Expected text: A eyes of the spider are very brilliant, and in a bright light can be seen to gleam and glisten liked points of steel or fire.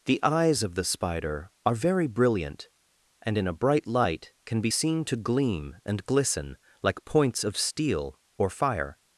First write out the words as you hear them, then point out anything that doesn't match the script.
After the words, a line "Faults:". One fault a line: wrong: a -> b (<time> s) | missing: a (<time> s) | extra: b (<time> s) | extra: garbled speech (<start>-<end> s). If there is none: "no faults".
The eyes of the spider are very brilliant, and in a bright light can be seen to gleam and glisten like points of steel or fire.
Faults:
wrong: A -> The (0.1 s)
wrong: liked -> like (6.8 s)